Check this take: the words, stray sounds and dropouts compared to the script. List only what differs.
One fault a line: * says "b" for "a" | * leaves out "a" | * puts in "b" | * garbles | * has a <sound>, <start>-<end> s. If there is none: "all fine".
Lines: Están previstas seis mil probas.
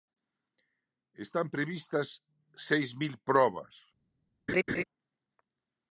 * has a laugh, 4.5-4.8 s